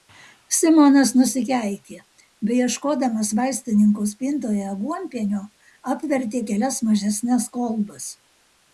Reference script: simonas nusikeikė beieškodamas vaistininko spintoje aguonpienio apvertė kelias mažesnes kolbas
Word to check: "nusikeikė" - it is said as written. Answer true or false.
true